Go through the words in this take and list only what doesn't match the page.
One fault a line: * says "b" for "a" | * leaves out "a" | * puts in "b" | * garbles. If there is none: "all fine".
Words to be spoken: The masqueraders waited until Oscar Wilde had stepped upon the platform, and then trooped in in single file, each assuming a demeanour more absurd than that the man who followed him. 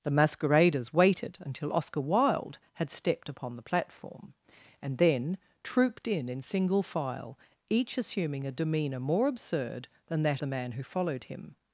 all fine